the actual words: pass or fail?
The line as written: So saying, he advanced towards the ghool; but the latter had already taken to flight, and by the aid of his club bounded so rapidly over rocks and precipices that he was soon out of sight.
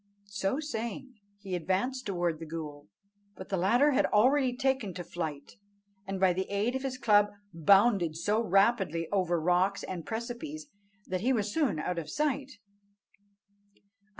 pass